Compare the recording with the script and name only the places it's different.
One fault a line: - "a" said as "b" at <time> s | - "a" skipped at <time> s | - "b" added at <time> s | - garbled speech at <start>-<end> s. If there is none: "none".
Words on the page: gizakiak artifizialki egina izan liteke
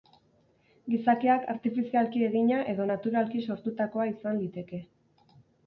- "edo naturalki sortutakoa" added at 2.8 s